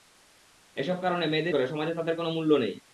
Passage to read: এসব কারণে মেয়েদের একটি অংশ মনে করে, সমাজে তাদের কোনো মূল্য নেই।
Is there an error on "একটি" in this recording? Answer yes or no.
yes